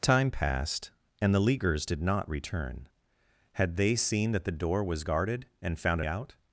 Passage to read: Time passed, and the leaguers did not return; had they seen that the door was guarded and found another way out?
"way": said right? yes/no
no